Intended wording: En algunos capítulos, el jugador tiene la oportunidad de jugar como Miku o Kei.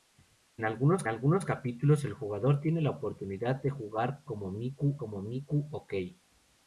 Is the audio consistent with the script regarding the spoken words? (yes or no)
no